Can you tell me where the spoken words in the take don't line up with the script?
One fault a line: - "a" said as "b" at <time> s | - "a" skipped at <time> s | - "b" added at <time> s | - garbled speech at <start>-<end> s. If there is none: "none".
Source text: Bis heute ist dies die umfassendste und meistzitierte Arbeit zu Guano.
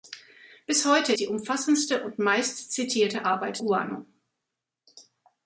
- "ist dies" skipped at 1.1 s
- "zu" skipped at 3.6 s